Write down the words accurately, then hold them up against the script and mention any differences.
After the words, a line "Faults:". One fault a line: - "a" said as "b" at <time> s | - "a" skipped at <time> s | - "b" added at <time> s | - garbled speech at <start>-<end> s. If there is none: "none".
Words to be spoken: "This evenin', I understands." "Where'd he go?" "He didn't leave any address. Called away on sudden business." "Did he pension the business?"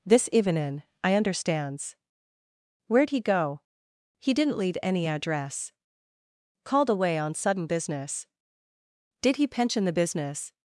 "This evenin', I understands." "Where'd he go?" "He didn't leave any address. Called away on sudden business." "Did he pension the business?"
Faults:
none